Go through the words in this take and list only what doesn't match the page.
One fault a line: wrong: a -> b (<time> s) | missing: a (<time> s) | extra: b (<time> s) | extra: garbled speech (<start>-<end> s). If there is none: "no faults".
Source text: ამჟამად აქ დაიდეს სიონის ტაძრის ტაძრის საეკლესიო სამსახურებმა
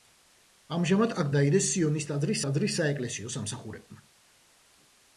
no faults